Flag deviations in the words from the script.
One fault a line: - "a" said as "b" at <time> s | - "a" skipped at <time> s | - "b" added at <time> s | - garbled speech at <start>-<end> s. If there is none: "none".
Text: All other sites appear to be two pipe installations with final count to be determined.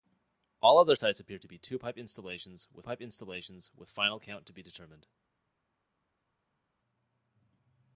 - "pipe installations with" added at 2.8 s